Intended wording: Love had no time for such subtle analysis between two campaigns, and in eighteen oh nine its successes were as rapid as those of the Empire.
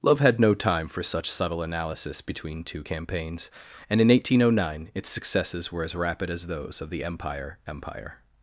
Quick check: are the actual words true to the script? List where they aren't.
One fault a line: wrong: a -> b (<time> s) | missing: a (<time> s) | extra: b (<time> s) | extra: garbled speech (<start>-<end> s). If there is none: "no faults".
extra: Empire (7.7 s)